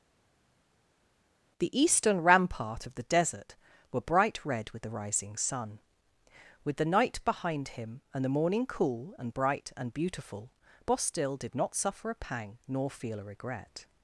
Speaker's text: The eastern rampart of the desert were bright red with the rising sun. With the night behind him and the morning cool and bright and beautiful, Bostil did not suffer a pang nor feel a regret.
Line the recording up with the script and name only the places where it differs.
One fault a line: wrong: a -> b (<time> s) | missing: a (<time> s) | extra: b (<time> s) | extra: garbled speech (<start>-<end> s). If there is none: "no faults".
no faults